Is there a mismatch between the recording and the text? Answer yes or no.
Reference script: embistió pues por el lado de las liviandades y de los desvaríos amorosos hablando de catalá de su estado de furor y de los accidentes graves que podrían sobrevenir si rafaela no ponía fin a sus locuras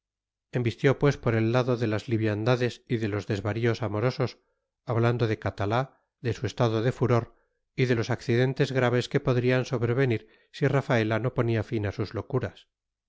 no